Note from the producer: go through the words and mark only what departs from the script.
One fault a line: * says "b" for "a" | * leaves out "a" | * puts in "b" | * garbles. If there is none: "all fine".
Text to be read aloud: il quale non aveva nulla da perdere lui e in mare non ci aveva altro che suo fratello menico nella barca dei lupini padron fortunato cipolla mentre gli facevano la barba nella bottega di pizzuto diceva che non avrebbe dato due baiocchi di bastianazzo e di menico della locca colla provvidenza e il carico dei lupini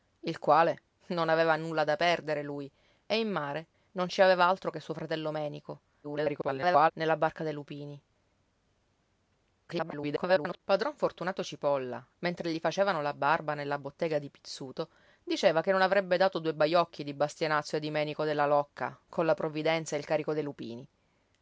* garbles
* garbles